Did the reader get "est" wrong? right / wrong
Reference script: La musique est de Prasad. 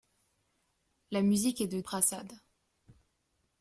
right